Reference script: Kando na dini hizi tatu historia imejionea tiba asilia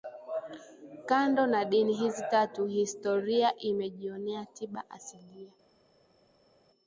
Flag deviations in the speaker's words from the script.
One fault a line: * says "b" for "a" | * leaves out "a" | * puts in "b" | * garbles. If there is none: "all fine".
all fine